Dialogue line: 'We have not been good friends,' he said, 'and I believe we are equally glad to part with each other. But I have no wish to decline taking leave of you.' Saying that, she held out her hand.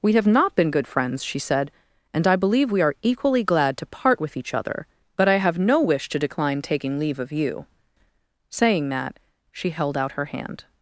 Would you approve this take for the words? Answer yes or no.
no